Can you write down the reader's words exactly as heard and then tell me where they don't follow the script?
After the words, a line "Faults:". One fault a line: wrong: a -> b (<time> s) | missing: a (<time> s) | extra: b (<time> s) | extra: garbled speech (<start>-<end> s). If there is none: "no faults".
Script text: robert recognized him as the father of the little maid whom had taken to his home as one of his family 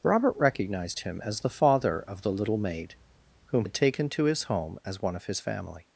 robert recognized him as the father of the little maid whom had taken to his home as one of his family
Faults:
no faults